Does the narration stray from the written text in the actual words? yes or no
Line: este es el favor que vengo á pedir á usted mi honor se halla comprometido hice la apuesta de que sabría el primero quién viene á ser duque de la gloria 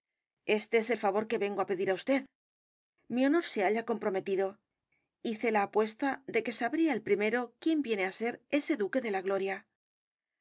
yes